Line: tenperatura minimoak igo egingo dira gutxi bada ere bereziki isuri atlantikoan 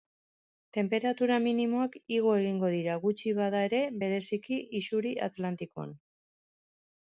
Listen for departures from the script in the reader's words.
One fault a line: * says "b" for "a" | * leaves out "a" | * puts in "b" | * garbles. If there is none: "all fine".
all fine